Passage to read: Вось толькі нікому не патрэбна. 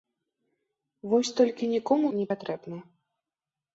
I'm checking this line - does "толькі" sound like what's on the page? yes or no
yes